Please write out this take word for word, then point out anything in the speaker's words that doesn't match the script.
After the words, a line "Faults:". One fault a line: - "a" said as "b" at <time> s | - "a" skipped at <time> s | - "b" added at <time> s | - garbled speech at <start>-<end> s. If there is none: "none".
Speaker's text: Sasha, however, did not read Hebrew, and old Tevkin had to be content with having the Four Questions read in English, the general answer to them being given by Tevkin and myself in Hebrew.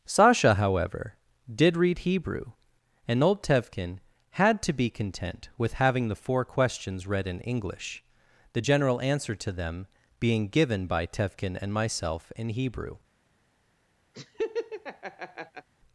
Sasha, however, did read Hebrew, and old Tevkin had to be content with having the Four Questions read in English, the general answer to them being given by Tevkin and myself in Hebrew.
Faults:
- "not" skipped at 1.8 s